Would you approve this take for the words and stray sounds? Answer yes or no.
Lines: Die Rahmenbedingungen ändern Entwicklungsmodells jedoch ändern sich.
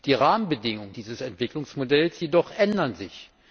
no